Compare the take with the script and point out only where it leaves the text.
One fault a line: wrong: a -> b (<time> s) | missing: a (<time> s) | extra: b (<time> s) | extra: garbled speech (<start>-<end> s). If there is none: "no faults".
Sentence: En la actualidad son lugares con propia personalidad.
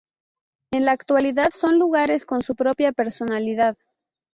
extra: su (2.4 s)